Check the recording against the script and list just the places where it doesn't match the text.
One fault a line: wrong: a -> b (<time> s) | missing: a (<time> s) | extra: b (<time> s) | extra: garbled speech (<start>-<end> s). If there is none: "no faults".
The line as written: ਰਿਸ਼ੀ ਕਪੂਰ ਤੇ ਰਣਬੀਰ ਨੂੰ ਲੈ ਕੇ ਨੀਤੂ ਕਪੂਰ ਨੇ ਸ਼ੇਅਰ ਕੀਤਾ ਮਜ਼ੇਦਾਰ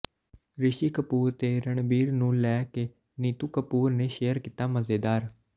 no faults